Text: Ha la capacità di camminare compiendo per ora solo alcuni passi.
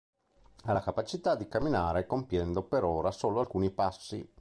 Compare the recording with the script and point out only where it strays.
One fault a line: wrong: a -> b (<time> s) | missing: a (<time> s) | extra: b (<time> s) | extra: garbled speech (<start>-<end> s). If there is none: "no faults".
no faults